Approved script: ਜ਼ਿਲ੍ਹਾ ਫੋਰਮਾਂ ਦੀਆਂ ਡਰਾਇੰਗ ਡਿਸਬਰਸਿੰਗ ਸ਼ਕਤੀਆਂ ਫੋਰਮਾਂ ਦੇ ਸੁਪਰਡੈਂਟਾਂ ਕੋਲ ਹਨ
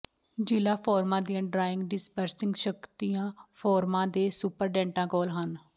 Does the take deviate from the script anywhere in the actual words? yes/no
no